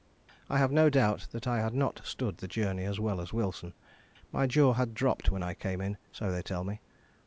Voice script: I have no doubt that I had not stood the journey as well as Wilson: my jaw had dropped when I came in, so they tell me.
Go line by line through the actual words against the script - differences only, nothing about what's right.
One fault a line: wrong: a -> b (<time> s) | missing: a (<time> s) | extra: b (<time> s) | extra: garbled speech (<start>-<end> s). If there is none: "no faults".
no faults